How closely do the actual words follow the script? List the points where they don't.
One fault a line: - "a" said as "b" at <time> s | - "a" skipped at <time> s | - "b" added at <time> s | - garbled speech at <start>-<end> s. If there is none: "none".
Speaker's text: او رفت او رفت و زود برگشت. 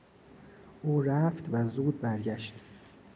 - "او رفت" skipped at 1.5 s